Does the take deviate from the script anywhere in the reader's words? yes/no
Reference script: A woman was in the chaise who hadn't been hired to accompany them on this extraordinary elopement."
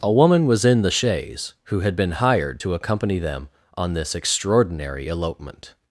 yes